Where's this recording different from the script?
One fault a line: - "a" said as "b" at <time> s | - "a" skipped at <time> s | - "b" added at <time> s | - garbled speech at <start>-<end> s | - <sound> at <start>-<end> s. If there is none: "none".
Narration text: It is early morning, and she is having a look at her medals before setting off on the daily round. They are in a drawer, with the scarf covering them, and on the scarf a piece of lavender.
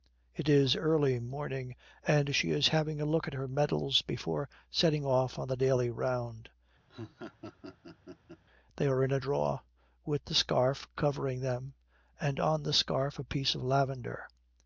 - laugh at 6.9-8.4 s